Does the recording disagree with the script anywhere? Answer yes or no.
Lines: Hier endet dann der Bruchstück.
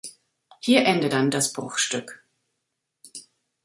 yes